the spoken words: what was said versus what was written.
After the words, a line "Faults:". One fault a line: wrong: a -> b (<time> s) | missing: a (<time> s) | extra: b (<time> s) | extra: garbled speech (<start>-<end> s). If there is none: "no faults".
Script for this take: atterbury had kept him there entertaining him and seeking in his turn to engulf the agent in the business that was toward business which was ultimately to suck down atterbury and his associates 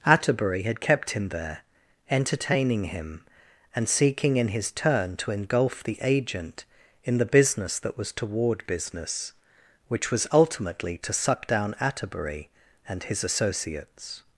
atterbury had kept him there entertaining him and seeking in his turn to engulf the agent in the business that was toward business which was ultimately to suck down atterbury and his associates
Faults:
no faults